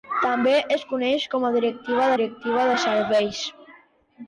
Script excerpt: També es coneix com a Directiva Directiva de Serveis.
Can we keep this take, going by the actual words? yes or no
yes